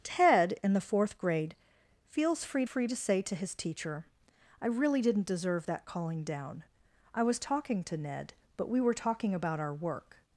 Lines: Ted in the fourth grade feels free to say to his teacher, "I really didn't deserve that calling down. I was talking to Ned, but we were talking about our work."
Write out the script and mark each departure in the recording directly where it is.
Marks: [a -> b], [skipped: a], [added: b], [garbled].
Ted in the fourth grade feels free [added: free] to say to his teacher, "I really didn't deserve that calling down. I was talking to Ned, but we were talking about our work."